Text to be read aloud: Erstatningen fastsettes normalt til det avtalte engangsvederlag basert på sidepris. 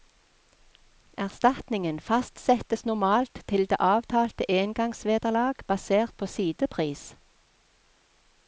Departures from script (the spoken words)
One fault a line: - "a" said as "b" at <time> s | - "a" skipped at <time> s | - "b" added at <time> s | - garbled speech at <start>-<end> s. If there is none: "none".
none